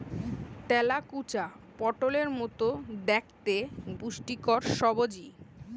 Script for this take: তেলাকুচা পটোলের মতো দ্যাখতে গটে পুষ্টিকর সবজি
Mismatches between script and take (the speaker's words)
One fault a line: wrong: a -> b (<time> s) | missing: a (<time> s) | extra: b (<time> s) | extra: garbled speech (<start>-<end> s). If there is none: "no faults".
missing: গটে (3.6 s)